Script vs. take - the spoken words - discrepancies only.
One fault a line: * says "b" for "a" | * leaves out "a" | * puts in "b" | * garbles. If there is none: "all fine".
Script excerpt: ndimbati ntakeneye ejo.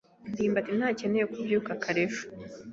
* puts in "kubyuka kare"